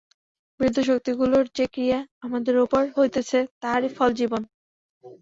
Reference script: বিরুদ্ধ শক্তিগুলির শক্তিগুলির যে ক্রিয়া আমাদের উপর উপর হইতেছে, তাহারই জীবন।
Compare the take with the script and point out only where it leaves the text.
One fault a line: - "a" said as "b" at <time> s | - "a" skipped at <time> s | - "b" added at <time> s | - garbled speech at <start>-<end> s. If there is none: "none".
- "শক্তিগুলির" skipped at 1.4 s
- "উপর" skipped at 2.8 s
- "ফল" added at 4.0 s